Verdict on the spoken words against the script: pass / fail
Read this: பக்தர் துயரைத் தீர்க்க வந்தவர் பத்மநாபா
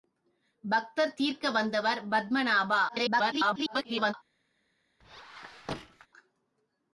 fail